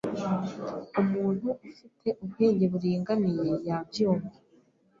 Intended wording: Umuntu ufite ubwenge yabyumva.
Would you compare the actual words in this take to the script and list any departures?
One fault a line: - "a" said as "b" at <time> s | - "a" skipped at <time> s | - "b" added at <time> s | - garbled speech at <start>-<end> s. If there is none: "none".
- "buringaniye" added at 2.7 s